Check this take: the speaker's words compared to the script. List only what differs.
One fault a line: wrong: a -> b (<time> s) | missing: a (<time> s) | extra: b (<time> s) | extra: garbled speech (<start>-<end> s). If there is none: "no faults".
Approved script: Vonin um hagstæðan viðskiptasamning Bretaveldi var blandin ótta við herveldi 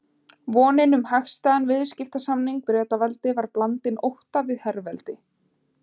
no faults